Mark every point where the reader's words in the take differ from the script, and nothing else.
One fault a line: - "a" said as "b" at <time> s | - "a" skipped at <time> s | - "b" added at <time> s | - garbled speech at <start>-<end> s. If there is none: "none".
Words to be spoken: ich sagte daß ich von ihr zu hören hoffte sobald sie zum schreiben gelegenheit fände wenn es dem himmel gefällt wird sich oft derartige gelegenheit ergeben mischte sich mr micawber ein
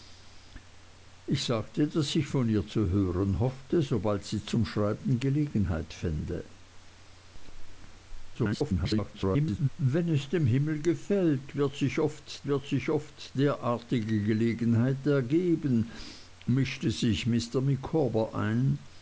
- garbled speech at 8.3-9.7 s
- "wird sich oft" added at 12.5 s